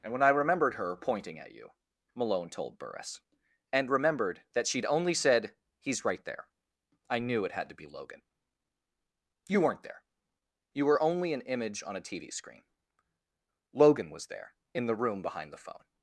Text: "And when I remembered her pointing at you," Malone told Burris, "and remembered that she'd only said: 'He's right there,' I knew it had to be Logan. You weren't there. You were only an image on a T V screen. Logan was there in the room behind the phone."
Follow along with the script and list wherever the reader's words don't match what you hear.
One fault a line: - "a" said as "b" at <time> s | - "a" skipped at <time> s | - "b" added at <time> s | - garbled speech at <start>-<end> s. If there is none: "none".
none